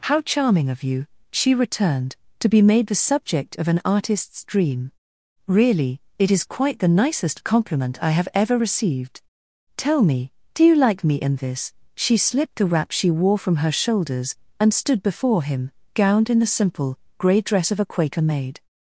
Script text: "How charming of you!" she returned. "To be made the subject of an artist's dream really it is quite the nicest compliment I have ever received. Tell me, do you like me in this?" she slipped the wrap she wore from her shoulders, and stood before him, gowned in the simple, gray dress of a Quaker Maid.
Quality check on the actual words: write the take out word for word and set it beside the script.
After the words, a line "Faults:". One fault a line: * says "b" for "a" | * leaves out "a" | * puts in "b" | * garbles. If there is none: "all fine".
"How charming of you!" she returned. "To be made the subject of an artist's dream really it is quite the nicest compliment I have ever received. Tell me, do you like me in this?" she slipped the wrap she wore from her shoulders, and stood before him, gowned in the simple, gray dress of a Quaker Maid.
Faults:
all fine